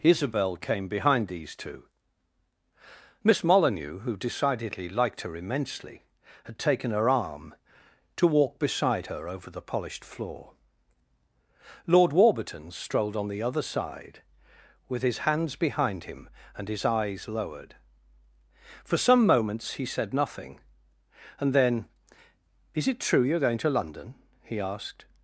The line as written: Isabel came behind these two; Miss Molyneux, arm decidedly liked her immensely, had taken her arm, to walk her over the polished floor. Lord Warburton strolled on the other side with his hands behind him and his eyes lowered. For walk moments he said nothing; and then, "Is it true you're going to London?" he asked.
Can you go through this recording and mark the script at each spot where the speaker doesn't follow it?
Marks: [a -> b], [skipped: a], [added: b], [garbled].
Isabel came behind these two; Miss Molyneux, [arm -> who] decidedly liked her immensely, had taken her arm, to walk [added: beside] her over the polished floor. Lord Warburton strolled on the other side with his hands behind him and his eyes lowered. For [walk -> some] moments he said nothing; and then, "Is it true you're going to London?" he asked.